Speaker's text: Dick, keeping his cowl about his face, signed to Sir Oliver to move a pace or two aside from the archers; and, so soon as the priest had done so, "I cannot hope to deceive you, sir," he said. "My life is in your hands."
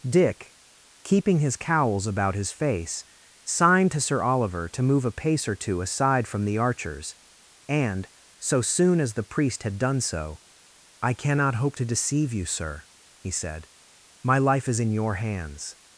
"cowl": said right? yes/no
no